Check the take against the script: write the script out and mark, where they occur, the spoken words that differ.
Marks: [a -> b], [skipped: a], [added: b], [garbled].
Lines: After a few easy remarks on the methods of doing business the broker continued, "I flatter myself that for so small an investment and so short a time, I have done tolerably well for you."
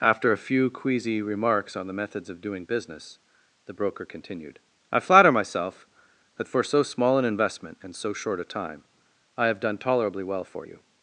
After a few [easy -> queasy] remarks on the methods of doing business the broker continued, "I flatter myself that for so small an investment and so short a time, I have done tolerably well for you."